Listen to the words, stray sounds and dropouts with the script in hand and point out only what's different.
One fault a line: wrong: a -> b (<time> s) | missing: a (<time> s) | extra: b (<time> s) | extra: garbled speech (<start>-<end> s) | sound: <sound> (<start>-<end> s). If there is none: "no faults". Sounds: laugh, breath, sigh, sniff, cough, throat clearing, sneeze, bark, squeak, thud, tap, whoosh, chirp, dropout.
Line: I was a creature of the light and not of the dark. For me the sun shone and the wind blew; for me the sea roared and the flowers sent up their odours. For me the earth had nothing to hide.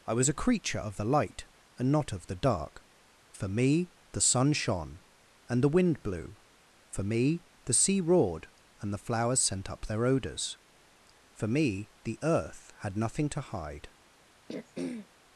sound: throat clearing (14.5-15.1 s)